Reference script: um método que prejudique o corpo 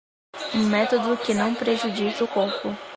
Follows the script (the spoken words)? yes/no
no